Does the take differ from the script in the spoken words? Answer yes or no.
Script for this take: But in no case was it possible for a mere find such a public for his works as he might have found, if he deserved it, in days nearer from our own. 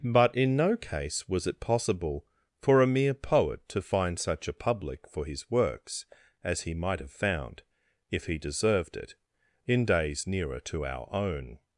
yes